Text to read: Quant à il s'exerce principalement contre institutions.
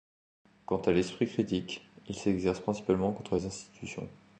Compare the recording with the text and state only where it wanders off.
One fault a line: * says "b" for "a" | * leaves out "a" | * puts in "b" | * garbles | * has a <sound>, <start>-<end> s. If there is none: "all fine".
* puts in "l'esprit critique"
* puts in "les"